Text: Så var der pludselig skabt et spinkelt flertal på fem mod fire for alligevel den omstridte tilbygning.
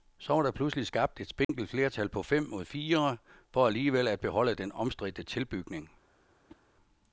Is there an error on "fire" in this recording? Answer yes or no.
no